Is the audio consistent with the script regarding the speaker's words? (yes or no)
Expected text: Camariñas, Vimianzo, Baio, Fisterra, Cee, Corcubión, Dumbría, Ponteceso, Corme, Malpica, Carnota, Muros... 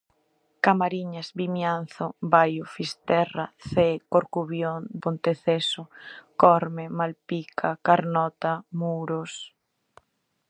no